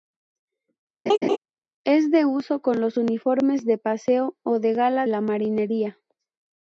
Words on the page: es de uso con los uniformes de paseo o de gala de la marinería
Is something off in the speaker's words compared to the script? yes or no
yes